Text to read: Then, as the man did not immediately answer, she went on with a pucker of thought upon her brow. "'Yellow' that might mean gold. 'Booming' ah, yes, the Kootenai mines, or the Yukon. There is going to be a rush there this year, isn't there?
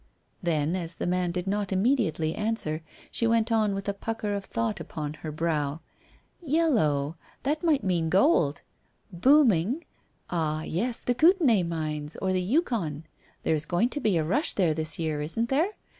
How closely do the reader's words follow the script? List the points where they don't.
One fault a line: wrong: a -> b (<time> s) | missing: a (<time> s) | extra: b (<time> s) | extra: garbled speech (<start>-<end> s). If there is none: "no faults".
no faults